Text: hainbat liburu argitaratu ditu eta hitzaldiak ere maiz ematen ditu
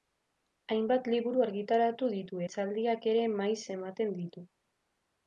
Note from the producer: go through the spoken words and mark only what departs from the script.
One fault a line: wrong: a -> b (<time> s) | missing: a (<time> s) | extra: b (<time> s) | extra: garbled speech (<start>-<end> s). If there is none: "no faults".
missing: eta (2.4 s)